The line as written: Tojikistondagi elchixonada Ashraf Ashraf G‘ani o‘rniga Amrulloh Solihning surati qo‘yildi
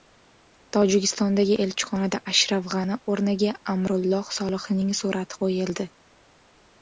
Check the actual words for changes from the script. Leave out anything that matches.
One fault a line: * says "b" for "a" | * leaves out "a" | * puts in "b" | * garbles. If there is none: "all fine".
* leaves out "Ashraf"